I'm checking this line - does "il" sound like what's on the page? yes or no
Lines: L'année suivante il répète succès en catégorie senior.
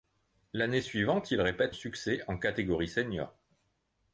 yes